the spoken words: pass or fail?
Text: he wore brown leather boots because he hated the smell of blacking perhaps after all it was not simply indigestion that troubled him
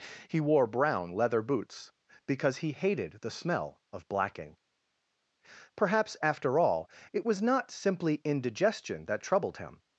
pass